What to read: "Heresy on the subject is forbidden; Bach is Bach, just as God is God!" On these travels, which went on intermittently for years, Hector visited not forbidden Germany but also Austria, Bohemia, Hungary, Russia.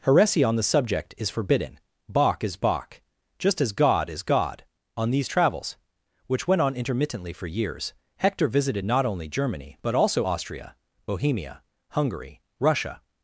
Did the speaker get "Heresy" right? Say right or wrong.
right